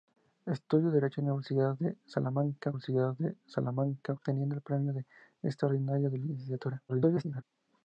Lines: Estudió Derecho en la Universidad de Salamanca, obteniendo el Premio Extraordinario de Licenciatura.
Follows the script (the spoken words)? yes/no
no